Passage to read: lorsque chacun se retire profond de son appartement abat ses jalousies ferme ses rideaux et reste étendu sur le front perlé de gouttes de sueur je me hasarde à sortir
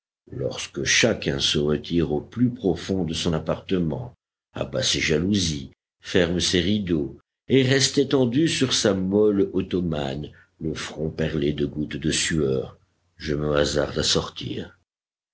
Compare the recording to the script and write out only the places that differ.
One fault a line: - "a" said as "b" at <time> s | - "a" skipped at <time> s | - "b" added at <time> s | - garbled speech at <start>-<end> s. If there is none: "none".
- "au plus" added at 2.1 s
- "sa molle ottomane" added at 8.7 s